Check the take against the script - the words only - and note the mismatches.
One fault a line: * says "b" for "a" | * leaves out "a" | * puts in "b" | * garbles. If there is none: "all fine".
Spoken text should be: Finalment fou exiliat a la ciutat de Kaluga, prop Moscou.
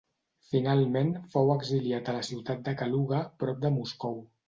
* puts in "de"